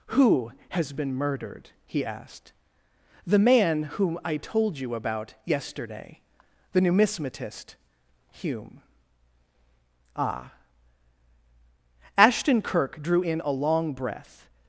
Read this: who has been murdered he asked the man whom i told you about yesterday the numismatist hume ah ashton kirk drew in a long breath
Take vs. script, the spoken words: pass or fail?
pass